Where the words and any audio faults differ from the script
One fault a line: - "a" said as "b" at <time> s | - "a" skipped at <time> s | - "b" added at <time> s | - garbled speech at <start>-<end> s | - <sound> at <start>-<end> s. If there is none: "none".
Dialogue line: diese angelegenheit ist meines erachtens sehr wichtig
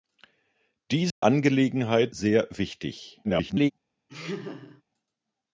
- dropout at 1.1-1.2 s
- "ist meines erachtens" skipped at 2.1 s
- garbled speech at 3.2-3.7 s
- laugh at 4.1-4.8 s